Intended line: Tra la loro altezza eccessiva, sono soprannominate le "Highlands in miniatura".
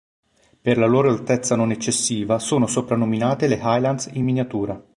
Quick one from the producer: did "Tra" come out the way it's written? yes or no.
no